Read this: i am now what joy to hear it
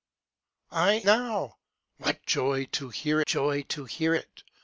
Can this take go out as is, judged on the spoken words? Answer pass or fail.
fail